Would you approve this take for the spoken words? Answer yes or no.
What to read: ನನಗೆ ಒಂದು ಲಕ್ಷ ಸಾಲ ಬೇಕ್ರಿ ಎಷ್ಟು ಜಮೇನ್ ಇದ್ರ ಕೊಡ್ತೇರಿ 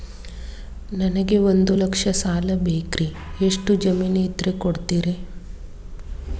yes